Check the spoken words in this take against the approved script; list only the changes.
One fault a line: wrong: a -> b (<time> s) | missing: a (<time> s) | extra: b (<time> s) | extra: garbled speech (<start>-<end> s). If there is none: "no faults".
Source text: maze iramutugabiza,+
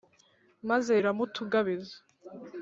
no faults